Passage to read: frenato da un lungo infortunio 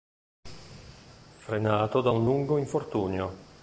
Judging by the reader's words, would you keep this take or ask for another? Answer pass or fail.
pass